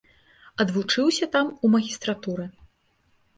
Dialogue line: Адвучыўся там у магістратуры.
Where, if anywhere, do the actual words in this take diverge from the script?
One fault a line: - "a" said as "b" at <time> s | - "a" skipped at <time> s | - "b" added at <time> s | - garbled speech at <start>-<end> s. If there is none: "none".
none